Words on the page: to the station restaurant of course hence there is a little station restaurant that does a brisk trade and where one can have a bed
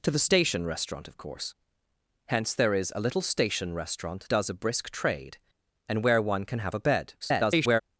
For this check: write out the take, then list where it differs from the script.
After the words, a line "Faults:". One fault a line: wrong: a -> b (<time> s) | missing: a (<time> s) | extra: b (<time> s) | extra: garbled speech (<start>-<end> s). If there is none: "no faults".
to the station restaurant of course hence there is a little station restaurant does a brisk trade and where one can have a bed [garbled]
Faults:
missing: that (4.3 s)
extra: garbled speech (7.2-7.8 s)